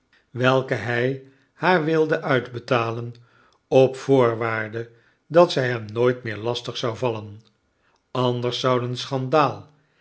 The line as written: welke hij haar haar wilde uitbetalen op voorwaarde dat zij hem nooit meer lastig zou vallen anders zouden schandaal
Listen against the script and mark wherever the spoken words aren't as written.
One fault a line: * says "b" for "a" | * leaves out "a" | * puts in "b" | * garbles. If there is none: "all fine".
* leaves out "haar"